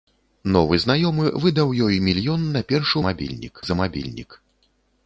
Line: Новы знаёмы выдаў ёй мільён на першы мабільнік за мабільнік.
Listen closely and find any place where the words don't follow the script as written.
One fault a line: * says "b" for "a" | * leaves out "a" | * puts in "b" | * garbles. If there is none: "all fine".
all fine